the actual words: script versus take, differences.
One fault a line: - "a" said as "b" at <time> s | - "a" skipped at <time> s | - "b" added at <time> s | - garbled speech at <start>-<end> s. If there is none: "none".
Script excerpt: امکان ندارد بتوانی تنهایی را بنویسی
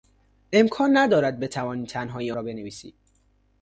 none